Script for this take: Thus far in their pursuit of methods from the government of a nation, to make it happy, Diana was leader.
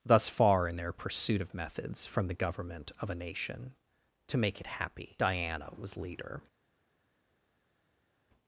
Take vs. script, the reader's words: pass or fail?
pass